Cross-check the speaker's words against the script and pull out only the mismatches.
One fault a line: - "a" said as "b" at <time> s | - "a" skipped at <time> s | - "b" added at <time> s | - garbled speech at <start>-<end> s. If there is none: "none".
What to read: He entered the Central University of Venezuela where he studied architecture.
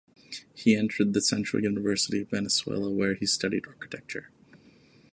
none